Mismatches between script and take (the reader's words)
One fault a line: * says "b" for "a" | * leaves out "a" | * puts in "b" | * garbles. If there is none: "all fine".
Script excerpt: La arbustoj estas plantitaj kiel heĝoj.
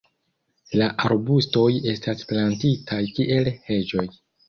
all fine